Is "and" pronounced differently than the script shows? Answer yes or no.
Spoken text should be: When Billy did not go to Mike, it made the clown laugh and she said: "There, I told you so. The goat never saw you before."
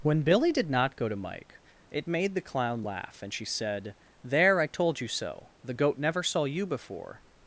no